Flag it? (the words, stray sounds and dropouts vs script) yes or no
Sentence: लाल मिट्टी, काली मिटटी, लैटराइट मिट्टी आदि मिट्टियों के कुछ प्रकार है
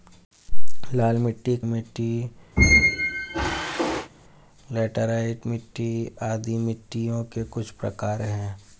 yes